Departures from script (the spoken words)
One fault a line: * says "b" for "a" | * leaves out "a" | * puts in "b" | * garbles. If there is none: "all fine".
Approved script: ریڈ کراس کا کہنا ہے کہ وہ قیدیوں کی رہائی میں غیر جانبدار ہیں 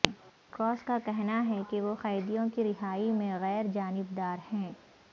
all fine